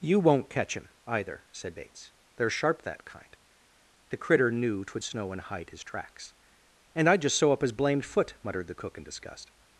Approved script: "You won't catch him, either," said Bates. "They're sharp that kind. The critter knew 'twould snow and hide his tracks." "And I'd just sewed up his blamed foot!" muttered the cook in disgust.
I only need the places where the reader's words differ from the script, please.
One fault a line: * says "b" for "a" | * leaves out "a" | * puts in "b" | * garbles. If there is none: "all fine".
* says "sew" for "sewed"